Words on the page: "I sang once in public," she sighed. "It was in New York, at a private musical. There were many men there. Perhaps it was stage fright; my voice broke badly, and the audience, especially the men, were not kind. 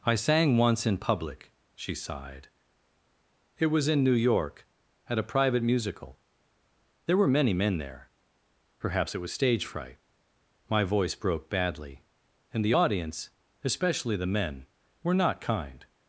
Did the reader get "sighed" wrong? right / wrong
right